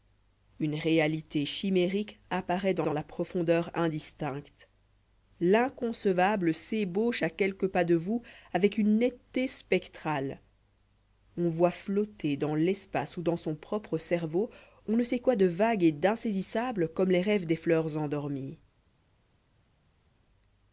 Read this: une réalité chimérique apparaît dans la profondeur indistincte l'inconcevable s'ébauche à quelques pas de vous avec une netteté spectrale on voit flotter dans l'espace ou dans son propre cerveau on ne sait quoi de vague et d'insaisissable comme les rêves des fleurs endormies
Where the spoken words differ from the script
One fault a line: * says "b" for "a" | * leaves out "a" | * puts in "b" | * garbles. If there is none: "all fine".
* puts in "dans"